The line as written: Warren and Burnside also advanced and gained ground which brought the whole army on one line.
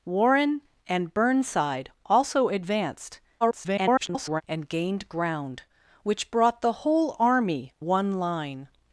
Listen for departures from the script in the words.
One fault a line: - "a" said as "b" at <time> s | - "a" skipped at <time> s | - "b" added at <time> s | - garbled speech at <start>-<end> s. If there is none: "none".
- garbled speech at 3.4-4.4 s
- "on" skipped at 7.7 s